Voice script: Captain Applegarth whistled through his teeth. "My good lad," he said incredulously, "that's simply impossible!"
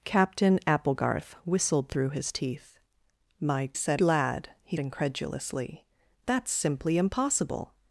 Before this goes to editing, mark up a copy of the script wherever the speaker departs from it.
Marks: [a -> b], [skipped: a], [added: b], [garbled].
Captain Applegarth whistled through his teeth. "My [good -> said] lad," he [skipped: said] incredulously, "that's simply impossible!"